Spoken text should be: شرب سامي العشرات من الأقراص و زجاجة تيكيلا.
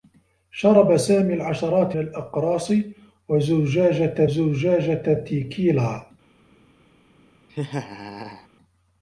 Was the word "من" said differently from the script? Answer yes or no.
yes